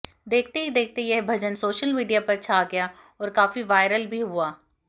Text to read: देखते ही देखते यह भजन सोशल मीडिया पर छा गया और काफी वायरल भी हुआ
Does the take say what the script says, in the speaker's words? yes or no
yes